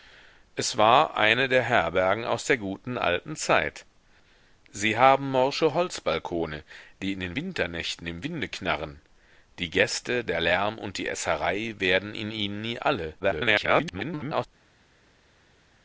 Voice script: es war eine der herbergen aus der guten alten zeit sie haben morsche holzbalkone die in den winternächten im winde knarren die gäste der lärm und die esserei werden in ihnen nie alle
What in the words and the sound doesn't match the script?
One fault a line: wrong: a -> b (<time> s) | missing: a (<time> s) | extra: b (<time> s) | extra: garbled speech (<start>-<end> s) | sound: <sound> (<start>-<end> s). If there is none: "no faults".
extra: garbled speech (13.2-14.5 s)